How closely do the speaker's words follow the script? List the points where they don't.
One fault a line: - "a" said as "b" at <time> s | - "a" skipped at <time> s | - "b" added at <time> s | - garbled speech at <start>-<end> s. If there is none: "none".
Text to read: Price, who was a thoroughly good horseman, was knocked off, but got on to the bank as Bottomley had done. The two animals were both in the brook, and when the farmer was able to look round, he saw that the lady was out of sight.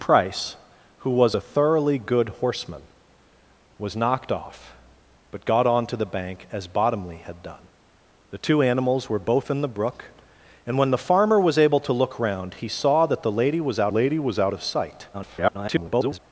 - "lady was out" added at 13.9 s
- garbled speech at 15.1-16.2 s